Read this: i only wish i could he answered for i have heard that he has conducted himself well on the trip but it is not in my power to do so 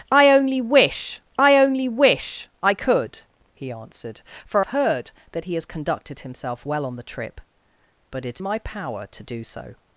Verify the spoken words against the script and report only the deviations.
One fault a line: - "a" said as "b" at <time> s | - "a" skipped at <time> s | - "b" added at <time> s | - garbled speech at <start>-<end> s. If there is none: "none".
- "only wish i" added at 1.6 s
- "i have" skipped at 4.7 s
- "is not in" skipped at 8.4 s